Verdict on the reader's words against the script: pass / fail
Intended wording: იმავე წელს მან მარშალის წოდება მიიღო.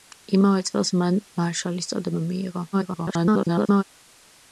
fail